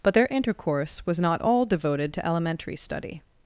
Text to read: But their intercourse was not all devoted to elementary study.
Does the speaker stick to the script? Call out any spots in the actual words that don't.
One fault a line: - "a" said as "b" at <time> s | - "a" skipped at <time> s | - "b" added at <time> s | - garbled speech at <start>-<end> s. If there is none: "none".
none